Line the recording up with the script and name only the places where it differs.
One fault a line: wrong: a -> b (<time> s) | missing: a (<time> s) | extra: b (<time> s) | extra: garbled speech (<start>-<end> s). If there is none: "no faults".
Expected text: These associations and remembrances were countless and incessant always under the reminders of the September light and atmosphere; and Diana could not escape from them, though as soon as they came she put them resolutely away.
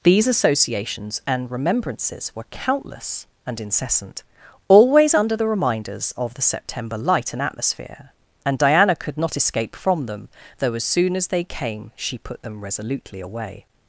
no faults